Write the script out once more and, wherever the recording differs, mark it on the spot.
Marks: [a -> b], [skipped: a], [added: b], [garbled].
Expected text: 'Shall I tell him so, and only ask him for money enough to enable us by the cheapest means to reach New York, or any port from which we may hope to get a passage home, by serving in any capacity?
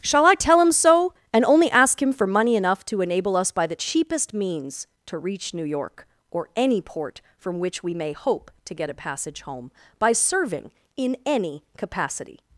'Shall I tell him so, and only ask him for money enough to enable us by the cheapest means to reach New York, or any port from which we may hope to get a passage home, by serving in any capacity?